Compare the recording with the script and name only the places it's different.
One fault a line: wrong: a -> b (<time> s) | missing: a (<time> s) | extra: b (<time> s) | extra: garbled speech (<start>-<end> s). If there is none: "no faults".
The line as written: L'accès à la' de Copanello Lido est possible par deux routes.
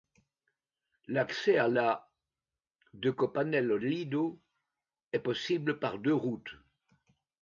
no faults